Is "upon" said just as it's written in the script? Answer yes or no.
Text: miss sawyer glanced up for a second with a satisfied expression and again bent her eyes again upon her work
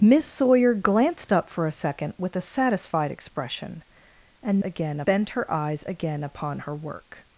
yes